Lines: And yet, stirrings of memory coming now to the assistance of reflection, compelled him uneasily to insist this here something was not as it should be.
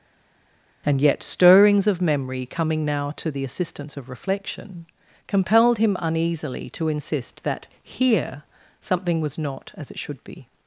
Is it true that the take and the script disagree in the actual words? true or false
true